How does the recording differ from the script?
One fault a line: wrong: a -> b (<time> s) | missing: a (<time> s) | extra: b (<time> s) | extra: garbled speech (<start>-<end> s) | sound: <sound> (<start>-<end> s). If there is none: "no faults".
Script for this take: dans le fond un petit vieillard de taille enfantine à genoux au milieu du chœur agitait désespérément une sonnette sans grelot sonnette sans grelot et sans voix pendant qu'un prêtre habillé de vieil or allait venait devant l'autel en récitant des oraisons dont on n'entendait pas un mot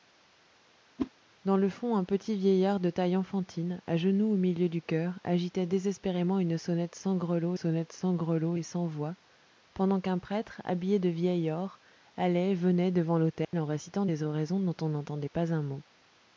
sound: whoosh (1.0-1.1 s)
sound: dropout (13.4-13.5 s)